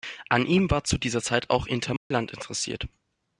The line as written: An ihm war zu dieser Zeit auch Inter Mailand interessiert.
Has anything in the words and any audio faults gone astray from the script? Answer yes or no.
yes